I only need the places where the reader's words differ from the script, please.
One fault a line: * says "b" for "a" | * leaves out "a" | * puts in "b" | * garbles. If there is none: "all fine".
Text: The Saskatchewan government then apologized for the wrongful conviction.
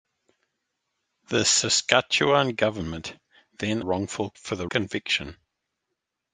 * says "wrongful" for "apologized"
* leaves out "wrongful"